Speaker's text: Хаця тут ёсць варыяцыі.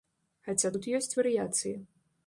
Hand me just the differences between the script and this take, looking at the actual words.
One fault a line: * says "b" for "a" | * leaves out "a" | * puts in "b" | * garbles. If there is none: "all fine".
all fine